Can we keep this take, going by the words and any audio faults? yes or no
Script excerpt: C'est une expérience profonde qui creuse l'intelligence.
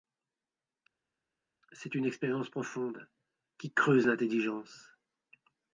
yes